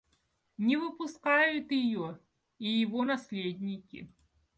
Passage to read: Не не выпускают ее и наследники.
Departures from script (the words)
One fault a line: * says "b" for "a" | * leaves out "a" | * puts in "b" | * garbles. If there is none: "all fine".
* leaves out "не"
* puts in "его"